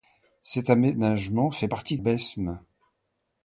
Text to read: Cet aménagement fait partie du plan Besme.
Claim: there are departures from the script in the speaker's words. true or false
true